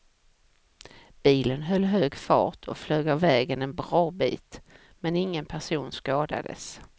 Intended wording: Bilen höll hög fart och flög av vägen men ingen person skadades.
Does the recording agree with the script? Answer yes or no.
no